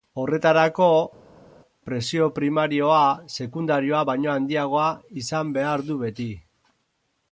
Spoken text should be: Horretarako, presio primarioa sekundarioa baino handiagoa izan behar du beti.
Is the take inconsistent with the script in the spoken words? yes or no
no